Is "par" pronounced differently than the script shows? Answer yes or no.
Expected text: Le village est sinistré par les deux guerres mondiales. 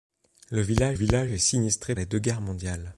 yes